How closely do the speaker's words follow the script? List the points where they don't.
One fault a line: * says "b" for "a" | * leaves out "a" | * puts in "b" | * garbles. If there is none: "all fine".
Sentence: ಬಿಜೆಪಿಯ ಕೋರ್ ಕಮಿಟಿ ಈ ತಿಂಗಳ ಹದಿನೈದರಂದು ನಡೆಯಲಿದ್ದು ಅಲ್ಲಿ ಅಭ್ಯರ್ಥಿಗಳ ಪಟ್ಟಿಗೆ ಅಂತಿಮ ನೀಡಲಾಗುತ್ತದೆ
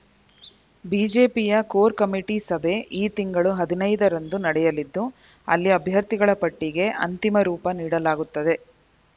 * puts in "ಸಭೆ"
* puts in "ರೂಪ"